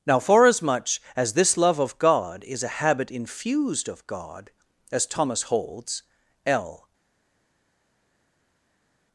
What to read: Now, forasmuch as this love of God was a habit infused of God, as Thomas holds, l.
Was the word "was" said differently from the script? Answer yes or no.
yes